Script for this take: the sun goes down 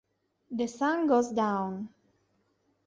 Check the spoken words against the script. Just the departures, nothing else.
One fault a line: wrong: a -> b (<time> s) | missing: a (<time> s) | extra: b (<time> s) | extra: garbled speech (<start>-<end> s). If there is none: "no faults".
no faults